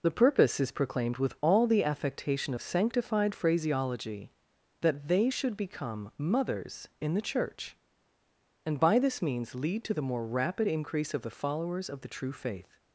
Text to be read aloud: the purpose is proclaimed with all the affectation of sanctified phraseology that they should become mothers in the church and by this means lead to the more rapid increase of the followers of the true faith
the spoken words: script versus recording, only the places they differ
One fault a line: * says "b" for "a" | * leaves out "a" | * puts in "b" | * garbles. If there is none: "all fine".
all fine